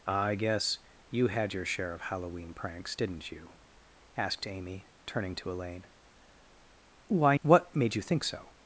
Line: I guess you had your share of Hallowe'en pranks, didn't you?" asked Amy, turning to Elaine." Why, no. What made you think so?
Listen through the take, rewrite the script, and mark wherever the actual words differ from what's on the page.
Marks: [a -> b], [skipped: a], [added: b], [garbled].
I guess you had your share of Hallowe'en pranks, didn't you?" asked Amy, turning to Elaine." Why, [skipped: no.] What made you think so?